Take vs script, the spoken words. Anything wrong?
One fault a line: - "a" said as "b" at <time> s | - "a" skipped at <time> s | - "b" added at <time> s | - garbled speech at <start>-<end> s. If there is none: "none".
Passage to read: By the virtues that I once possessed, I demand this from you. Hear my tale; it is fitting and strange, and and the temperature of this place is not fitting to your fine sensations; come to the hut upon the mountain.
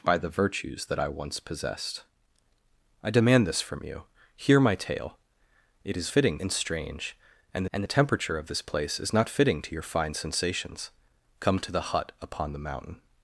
none